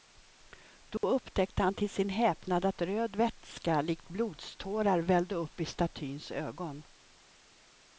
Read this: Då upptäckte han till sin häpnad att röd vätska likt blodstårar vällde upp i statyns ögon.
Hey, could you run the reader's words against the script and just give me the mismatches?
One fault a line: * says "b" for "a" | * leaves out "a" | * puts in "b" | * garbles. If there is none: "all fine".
all fine